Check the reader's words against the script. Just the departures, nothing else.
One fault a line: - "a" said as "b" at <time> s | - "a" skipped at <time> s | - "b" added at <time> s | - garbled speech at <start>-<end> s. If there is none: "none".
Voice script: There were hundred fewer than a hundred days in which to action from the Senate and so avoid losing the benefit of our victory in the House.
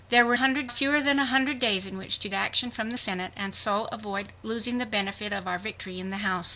none